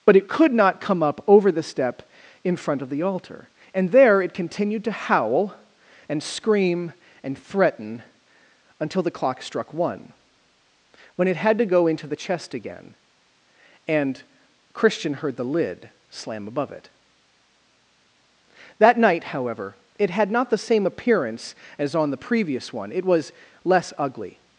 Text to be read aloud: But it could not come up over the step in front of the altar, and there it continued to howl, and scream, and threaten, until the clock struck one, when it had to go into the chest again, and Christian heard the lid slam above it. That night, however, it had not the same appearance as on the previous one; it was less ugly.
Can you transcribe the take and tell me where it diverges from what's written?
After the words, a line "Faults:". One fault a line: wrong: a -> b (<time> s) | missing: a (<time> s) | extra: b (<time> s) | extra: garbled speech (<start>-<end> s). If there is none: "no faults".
But it could not come up over the step in front of the altar, and there it continued to howl, and scream, and threaten, until the clock struck one, when it had to go into the chest again, and Christian heard the lid slam above it. That night, however, it had not the same appearance as on the previous one; it was less ugly.
Faults:
no faults